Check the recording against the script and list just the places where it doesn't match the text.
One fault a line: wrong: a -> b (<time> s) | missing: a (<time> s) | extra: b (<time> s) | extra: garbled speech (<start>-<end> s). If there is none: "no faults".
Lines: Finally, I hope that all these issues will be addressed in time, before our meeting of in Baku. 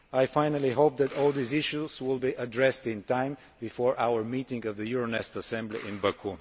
extra: the Euronest Assembly (4.7 s)